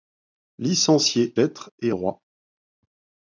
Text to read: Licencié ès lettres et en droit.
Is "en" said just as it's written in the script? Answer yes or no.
no